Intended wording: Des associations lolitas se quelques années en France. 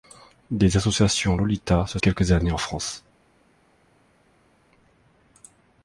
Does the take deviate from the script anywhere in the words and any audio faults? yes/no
no